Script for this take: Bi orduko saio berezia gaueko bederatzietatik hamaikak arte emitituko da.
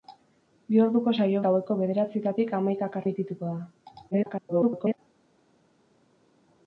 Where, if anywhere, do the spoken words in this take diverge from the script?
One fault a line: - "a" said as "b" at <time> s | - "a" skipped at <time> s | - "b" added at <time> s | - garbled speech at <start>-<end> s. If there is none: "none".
- "berezia" skipped at 1.4 s
- "arte" skipped at 3.0 s
- garbled speech at 4.1-5.0 s